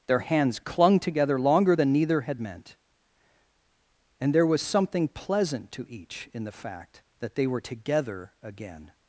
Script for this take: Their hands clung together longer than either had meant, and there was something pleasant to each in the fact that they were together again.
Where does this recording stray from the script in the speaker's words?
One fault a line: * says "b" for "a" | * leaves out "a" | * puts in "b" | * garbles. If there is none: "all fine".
* says "neither" for "either"